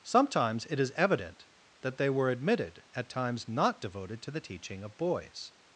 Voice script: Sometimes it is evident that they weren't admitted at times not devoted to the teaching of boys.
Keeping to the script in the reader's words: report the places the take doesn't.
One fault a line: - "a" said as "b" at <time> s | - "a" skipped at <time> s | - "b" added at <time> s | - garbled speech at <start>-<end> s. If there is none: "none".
- "weren't" said as "were" at 2.1 s